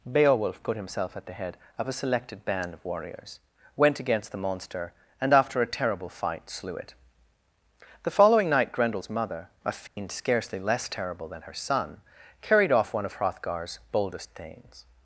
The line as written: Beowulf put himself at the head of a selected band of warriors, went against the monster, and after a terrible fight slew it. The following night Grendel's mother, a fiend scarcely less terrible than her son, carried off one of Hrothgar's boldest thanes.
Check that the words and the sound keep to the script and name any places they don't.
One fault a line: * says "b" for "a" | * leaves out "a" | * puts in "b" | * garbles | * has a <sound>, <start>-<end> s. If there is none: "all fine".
* has a dropout, 9.9-10.0 s